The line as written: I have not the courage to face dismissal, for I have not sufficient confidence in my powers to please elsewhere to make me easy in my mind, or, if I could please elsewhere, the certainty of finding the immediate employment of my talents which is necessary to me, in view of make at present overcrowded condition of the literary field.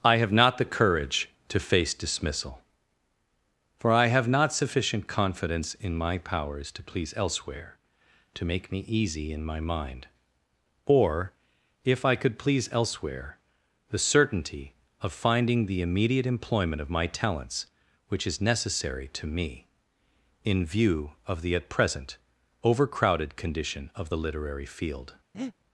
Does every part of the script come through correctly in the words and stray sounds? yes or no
no